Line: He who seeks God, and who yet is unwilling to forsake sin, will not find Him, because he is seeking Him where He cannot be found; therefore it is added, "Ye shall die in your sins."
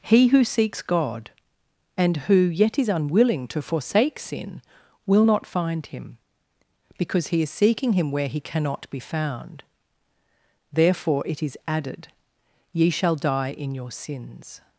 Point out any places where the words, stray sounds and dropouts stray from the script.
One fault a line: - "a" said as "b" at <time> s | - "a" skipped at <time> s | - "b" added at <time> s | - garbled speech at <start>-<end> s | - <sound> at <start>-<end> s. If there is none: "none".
none